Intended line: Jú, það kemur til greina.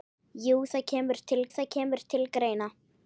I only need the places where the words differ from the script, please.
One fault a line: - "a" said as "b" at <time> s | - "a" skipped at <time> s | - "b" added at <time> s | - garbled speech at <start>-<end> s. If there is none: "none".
- "það kemur til" added at 1.5 s